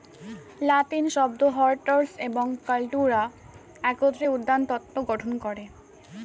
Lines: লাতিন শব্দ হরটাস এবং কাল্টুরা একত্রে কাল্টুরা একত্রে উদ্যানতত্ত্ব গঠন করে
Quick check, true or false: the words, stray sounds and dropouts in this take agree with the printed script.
false